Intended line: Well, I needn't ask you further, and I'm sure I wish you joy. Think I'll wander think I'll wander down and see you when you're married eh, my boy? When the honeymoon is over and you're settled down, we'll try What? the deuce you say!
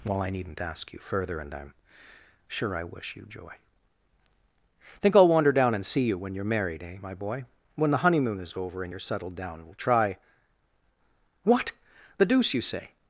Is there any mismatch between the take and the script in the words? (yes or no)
yes